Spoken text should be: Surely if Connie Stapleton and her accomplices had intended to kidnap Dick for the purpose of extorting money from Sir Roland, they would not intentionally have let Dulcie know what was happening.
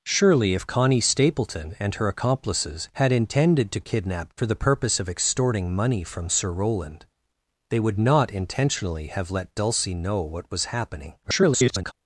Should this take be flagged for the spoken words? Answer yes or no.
yes